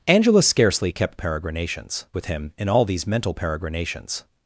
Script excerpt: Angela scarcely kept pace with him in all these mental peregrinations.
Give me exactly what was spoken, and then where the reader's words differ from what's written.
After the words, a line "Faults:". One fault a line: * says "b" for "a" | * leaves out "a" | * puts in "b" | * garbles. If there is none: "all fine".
Angela scarcely kept peregrinations with him in all these mental peregrinations.
Faults:
* says "peregrinations" for "pace"